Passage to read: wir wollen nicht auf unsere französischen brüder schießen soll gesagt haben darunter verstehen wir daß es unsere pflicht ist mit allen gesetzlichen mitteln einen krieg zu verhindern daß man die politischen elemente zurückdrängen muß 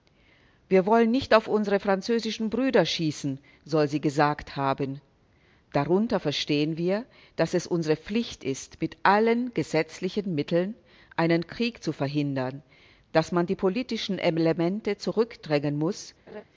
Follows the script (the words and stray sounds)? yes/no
no